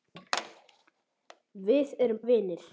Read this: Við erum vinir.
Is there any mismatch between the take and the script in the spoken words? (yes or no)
no